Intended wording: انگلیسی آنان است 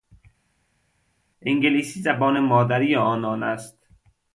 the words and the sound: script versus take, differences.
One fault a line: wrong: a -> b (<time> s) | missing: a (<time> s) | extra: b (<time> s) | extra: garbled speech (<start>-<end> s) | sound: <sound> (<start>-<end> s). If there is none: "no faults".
extra: زبان مادری (2.0 s)